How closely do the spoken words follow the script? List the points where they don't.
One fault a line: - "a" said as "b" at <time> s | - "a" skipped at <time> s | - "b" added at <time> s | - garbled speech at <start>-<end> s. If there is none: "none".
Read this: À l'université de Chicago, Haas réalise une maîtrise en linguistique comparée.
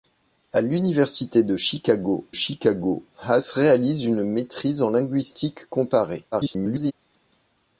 - "Chicago" added at 2.3 s
- garbled speech at 6.3-6.9 s